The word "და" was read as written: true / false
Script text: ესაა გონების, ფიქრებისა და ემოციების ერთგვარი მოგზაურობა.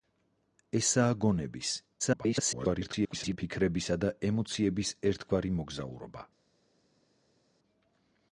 true